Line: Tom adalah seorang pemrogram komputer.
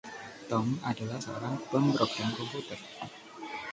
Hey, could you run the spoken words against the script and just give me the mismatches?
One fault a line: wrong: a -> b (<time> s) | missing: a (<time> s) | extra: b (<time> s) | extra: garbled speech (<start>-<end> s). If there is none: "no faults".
no faults